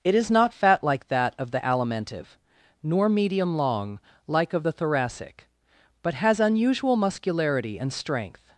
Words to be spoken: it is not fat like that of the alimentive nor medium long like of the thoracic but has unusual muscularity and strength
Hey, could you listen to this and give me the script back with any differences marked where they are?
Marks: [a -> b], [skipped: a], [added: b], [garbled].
it is not fat like that of the alimentive nor medium long like of the thoracic but has unusual muscularity and strength